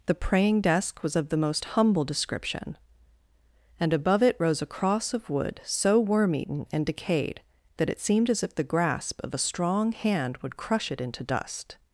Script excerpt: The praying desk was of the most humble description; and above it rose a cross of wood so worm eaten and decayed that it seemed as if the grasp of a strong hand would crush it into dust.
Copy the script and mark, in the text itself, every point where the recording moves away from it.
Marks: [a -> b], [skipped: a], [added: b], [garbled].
The praying desk was of the most humble description; and above it rose a cross of wood so worm eaten and decayed that it seemed as if the grasp of a strong hand would crush it into dust.